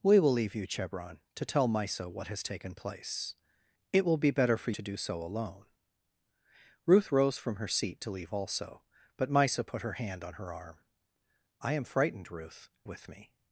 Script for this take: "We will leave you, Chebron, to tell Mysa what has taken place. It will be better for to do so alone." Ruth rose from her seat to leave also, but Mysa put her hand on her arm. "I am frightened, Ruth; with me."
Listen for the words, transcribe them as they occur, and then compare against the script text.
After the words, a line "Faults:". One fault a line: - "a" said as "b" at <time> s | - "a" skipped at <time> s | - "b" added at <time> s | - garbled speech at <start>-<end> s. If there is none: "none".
"We will leave you, Chebron, to tell Mysa what has taken place. It will be better for to do so alone." Ruth rose from her seat to leave also, but Mysa put her hand on her arm. "I am frightened, Ruth; with me."
Faults:
none